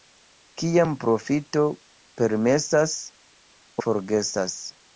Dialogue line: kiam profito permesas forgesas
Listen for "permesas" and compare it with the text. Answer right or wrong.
right